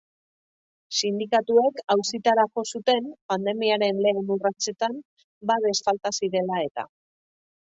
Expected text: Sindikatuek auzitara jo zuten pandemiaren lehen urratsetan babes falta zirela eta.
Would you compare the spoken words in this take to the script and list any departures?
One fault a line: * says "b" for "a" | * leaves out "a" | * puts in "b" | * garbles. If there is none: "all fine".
all fine